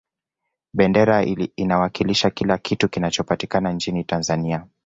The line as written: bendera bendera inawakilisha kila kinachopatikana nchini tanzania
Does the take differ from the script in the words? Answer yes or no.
yes